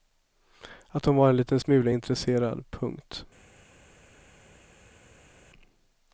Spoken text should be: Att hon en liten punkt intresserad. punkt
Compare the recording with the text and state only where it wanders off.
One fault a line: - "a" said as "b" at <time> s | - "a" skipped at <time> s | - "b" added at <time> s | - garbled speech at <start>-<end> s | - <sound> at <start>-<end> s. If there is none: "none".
- "var" added at 1.1 s
- "punkt" said as "smula" at 1.6 s